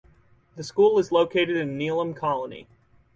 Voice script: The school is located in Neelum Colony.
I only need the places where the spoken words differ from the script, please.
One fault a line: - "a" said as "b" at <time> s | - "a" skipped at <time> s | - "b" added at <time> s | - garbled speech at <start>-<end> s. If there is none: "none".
none